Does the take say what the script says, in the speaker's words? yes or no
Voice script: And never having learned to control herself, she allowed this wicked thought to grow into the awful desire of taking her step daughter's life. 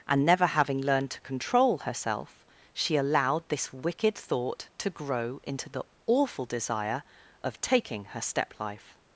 no